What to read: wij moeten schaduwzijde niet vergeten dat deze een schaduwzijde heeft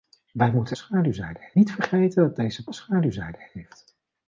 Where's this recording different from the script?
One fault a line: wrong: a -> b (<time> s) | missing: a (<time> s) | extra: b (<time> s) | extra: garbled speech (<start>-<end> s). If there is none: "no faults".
no faults